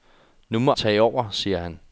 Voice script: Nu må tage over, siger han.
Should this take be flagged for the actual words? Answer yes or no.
no